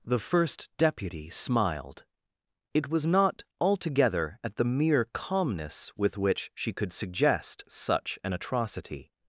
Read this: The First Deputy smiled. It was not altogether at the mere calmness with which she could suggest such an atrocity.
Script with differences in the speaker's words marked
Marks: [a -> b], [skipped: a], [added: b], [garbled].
The First Deputy smiled. It was not altogether at the mere calmness with which she could suggest such an atrocity.